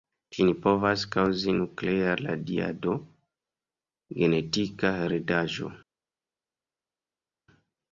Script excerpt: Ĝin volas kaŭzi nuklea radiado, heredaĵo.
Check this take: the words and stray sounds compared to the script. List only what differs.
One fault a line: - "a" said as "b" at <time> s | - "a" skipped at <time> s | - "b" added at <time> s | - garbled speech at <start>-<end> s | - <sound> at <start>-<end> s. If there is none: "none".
- "volas" said as "povas" at 0.6 s
- "genetika" added at 4.2 s